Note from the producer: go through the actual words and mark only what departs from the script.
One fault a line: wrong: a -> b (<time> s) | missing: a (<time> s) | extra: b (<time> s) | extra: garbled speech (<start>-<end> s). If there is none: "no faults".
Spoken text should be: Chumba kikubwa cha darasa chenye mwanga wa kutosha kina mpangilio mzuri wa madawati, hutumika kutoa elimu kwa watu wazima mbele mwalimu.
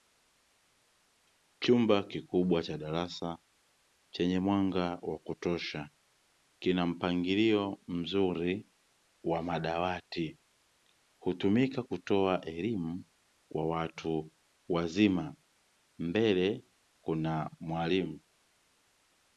extra: kuna (17.0 s)